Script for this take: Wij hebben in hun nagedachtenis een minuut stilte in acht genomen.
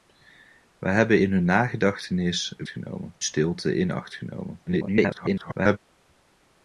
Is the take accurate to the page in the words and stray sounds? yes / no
no